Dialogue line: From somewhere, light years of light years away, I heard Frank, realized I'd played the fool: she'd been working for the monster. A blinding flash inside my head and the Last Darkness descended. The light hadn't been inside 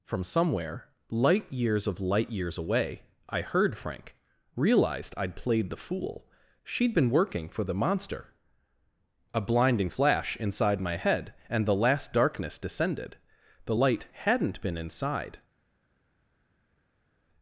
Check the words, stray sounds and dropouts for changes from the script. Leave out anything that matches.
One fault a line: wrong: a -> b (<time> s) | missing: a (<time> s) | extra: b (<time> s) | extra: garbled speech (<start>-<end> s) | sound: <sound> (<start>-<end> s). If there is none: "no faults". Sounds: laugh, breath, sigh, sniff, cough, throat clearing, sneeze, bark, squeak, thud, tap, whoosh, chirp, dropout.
no faults